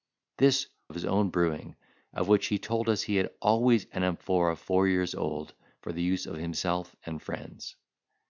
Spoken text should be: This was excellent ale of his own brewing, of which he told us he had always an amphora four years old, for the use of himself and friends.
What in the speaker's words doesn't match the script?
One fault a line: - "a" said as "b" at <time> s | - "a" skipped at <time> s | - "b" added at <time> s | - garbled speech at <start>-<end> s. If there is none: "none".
- "was excellent ale" skipped at 0.7 s